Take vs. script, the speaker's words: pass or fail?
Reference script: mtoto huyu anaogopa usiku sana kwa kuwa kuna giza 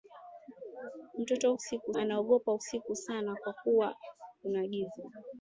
fail